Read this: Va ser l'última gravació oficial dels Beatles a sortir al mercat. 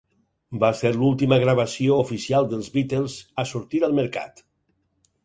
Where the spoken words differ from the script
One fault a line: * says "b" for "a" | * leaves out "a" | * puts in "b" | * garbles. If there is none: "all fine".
all fine